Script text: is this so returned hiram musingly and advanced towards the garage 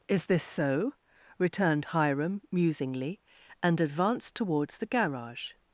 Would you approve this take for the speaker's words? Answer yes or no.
yes